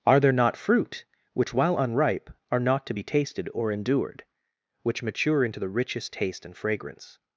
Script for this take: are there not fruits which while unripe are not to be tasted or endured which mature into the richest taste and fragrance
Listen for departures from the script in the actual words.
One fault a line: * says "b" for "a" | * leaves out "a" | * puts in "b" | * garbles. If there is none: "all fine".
* says "fruit" for "fruits"